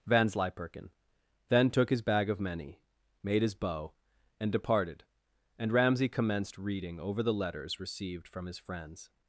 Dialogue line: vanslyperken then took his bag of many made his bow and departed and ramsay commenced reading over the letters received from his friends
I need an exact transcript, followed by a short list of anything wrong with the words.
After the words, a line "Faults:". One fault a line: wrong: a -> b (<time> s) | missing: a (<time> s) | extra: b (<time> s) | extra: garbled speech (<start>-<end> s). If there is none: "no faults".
vanslyperken then took his bag of many made his bow and departed and ramsay commenced reading over the letters received from his friends
Faults:
no faults